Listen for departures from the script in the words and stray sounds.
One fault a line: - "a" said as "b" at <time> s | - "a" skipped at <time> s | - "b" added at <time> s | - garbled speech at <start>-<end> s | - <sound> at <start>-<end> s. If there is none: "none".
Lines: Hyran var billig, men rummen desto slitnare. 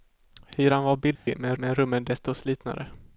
- dropout at 1.2-1.3 s
- "men" added at 1.6 s